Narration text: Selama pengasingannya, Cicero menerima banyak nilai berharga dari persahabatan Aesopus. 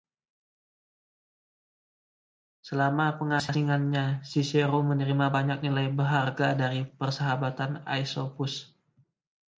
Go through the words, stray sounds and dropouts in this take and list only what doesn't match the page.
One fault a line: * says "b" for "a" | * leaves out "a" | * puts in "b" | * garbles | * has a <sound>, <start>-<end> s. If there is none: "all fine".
all fine